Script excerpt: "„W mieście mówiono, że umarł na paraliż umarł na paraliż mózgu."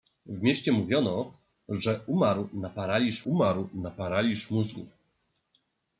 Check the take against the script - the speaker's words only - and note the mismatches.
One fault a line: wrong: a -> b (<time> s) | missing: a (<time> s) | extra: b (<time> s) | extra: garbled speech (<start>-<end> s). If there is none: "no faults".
no faults